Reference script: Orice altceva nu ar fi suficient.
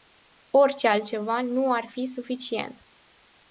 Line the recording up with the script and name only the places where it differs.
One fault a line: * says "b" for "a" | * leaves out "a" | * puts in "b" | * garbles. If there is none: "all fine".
all fine